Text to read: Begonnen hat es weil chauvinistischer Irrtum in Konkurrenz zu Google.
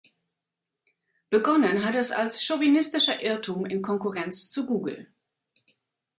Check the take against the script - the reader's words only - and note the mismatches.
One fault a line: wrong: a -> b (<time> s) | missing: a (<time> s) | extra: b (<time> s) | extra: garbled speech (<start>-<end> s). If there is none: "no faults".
wrong: weil -> als (2.1 s)